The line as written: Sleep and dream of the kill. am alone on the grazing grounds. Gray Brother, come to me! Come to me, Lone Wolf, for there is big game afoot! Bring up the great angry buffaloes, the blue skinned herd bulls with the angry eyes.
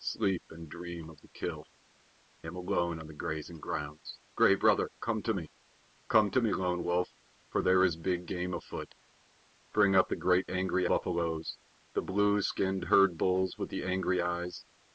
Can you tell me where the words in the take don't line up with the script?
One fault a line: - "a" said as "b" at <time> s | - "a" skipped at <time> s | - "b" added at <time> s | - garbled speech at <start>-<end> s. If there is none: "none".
none